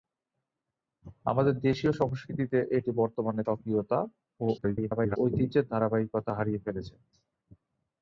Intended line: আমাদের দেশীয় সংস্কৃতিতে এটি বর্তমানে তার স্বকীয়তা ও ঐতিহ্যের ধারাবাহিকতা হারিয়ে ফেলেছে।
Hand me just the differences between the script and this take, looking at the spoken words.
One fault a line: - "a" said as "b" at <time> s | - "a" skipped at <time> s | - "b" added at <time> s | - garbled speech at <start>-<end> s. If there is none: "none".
- "তার" skipped at 3.4 s
- garbled speech at 4.6-5.2 s